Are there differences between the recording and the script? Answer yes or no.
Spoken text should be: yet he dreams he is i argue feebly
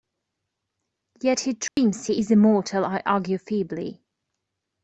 yes